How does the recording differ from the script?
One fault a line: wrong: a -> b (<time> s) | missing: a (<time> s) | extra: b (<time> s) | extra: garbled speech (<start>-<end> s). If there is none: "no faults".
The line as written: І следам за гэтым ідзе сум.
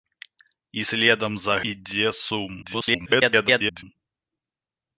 missing: гэтым (1.6 s)
extra: garbled speech (2.6-3.8 s)